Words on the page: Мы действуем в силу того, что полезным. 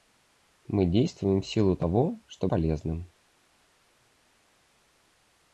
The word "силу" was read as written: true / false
true